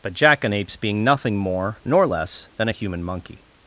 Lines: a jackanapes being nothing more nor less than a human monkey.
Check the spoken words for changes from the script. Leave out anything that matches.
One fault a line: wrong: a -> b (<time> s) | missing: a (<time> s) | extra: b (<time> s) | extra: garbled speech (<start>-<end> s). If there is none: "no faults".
wrong: a -> but (0.0 s)